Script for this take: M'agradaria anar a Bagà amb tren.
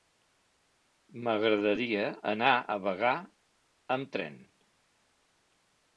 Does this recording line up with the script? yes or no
yes